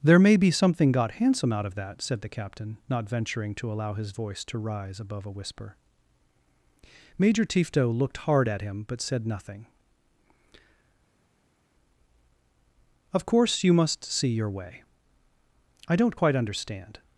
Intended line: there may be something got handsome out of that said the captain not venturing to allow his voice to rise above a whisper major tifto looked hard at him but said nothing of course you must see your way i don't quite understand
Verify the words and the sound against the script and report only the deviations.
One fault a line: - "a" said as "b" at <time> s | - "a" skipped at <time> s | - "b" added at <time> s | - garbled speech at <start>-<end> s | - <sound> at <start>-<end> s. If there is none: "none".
none